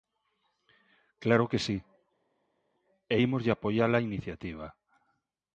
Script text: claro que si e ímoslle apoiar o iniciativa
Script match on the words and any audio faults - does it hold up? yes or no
no